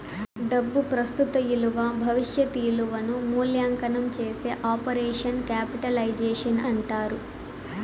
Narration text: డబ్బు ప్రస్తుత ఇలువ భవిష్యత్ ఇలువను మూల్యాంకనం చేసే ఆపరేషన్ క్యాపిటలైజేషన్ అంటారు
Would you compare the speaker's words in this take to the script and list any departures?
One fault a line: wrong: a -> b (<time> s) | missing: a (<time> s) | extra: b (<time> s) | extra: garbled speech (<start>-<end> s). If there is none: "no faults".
no faults